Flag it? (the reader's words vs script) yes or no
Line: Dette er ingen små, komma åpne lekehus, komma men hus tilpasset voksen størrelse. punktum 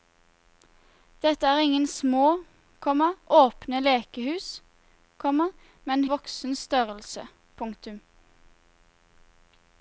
yes